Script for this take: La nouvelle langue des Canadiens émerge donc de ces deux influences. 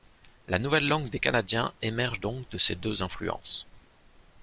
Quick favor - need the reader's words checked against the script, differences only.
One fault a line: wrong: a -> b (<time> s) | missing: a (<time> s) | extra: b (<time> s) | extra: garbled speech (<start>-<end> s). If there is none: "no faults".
no faults